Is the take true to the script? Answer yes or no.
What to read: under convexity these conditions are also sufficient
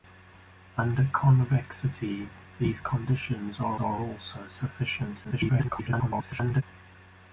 no